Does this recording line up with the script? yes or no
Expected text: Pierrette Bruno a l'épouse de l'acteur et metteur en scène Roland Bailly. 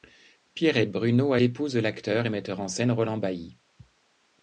yes